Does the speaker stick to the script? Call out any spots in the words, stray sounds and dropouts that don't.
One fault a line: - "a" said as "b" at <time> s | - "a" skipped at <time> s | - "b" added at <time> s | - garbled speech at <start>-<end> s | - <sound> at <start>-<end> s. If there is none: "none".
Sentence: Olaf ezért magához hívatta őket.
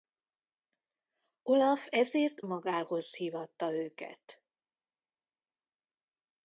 none